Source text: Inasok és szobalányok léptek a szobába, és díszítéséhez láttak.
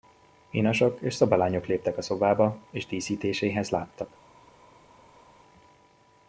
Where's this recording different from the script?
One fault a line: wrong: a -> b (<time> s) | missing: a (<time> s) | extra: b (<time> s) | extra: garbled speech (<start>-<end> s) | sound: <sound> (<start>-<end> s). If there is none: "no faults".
no faults